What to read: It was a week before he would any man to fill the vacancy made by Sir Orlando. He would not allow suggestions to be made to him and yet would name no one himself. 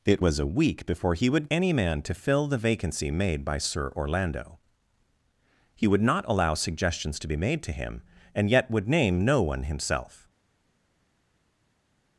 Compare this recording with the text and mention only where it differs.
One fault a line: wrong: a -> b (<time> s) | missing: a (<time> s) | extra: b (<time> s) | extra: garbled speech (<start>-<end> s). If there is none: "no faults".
no faults